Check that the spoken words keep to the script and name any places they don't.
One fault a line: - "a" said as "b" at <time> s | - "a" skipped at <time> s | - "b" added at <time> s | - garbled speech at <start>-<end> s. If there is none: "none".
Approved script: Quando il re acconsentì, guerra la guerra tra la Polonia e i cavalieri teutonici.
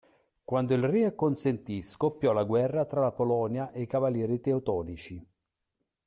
- "guerra" said as "scoppiò" at 1.8 s